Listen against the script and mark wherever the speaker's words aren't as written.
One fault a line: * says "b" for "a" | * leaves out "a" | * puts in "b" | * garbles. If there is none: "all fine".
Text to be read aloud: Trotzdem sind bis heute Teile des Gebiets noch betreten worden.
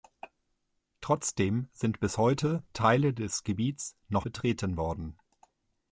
all fine